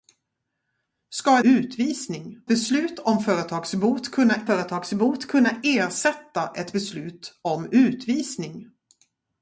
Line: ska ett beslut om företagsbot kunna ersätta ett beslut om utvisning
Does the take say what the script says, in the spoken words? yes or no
no